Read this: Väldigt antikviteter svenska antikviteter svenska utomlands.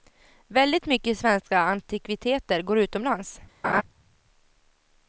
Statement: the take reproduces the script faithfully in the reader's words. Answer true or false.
false